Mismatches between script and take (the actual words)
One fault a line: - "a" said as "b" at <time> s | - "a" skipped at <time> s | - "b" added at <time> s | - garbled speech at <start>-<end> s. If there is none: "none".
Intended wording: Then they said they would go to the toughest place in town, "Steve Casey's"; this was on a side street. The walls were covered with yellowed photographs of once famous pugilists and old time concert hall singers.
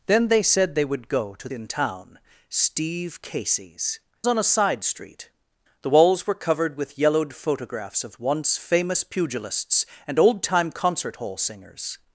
- "the toughest place" skipped at 1.5 s
- "this was" skipped at 4.0 s